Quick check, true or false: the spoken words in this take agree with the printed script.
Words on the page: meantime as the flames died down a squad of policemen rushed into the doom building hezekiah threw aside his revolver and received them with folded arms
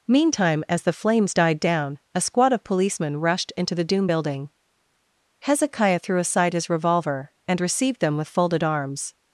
true